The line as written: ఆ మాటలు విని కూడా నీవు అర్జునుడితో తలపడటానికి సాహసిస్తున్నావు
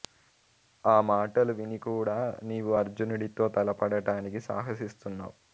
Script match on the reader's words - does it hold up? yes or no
yes